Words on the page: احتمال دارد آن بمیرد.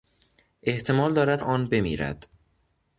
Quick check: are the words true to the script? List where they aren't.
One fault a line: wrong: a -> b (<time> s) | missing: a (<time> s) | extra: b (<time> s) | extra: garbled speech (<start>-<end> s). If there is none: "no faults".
no faults